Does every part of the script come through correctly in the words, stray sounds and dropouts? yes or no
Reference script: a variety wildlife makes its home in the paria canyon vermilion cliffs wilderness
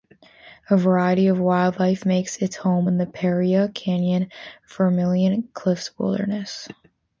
no